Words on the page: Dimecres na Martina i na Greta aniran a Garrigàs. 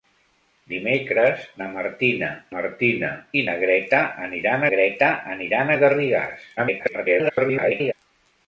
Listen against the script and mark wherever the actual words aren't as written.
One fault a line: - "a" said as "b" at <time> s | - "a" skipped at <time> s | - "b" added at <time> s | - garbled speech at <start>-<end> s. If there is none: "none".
- "Martina" added at 2.5 s
- "Greta aniran" added at 4.7 s
- garbled speech at 6.6-7.9 s